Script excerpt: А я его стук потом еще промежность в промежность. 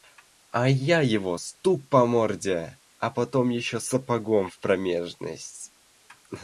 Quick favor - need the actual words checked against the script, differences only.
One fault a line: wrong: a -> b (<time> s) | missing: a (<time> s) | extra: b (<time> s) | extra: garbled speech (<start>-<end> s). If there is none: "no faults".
extra: по морде а (1.9 s)
wrong: промежность -> сапогом (3.8 s)